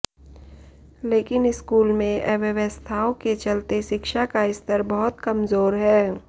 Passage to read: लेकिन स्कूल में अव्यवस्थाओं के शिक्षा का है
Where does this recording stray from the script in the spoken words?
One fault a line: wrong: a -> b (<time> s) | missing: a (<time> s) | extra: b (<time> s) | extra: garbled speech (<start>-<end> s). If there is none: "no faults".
extra: चलते (3.3 s)
extra: स्तर बहुत कमजोर (4.5 s)